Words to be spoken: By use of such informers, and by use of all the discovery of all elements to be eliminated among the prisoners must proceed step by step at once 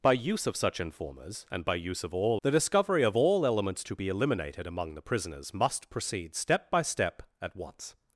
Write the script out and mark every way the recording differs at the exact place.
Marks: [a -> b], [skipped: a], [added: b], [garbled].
By use of such informers, and by use of all the discovery of all elements to be eliminated among the prisoners must proceed step by step at once